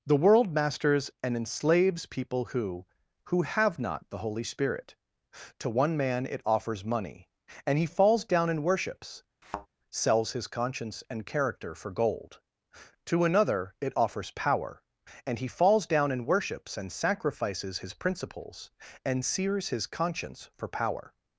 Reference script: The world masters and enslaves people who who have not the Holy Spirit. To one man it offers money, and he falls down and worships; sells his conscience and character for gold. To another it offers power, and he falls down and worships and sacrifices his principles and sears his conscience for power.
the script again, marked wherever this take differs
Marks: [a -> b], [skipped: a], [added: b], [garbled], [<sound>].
The world masters and enslaves people who who have not the Holy Spirit. To one man it offers money, and he falls down and worships; [thud] sells his conscience and character for gold. To another it offers power, and he falls down and worships and sacrifices his principles and sears his conscience for power.